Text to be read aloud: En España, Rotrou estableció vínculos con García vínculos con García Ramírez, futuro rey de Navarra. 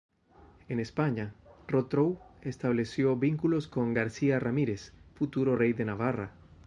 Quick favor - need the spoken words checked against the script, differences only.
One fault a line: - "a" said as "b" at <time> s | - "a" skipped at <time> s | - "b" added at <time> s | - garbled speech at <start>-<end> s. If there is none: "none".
- "vínculos con García" skipped at 4.4 s